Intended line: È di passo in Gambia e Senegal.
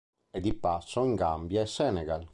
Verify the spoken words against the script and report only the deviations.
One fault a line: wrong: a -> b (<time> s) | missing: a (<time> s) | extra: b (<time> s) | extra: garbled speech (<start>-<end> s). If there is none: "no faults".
no faults